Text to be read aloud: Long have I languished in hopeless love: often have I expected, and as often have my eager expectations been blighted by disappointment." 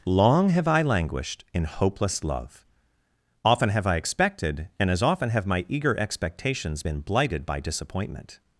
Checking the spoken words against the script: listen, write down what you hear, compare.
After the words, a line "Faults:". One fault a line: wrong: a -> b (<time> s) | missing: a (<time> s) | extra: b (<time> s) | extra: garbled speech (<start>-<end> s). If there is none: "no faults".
Long have I languished in hopeless love: often have I expected, and as often have my eager expectations been blighted by disappointment."
Faults:
no faults